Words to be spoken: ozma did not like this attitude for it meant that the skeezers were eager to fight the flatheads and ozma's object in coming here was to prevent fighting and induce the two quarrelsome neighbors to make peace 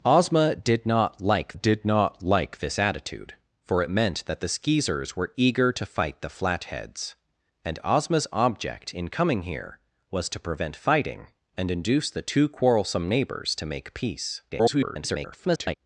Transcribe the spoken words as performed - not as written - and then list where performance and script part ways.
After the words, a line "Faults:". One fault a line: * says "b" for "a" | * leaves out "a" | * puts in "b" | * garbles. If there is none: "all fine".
ozma did not like did not like this attitude for it meant that the skeezers were eager to fight the flatheads and ozma's object in coming here was to prevent fighting and induce the two quarrelsome neighbors to make peace [garbled]
Faults:
* puts in "did not like"
* garbles